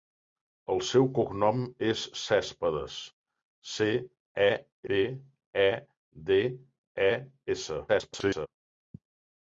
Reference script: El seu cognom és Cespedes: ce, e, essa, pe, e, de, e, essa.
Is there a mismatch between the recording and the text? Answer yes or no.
yes